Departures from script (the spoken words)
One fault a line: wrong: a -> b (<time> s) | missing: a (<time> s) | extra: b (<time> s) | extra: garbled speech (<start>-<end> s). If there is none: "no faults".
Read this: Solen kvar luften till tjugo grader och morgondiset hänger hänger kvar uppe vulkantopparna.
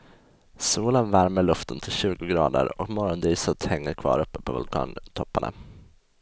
wrong: kvar -> värmer (1.1 s)
missing: hänger (3.9 s)
extra: på (4.4 s)